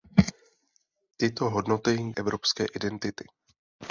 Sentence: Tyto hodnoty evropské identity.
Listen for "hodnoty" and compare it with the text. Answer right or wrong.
right